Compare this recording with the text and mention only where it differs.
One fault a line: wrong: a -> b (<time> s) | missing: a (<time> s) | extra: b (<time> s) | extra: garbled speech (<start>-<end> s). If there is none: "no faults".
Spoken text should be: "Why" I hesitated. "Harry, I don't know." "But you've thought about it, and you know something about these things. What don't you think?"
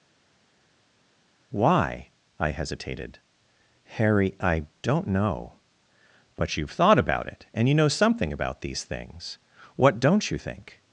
no faults